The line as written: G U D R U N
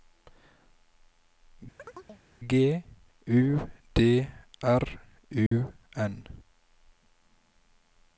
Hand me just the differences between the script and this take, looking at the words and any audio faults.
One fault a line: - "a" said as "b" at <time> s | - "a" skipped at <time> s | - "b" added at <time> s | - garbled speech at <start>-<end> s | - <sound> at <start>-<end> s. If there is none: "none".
- chirp at 1.8-2.2 s
- dropout at 5.5-5.5 s